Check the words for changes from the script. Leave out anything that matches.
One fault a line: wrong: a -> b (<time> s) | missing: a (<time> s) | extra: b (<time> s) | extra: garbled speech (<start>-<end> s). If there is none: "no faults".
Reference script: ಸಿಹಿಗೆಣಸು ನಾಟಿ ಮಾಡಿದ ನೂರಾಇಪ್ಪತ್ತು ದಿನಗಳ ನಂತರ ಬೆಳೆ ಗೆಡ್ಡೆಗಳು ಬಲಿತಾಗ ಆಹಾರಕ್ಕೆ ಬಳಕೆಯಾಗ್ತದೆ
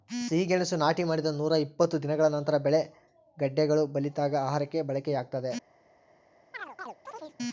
no faults